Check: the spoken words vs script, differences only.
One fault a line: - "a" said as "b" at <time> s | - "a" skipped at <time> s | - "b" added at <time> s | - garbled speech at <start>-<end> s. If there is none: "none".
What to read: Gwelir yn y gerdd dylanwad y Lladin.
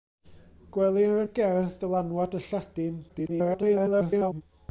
- "yn" skipped at 1.2 s
- garbled speech at 3.1-4.4 s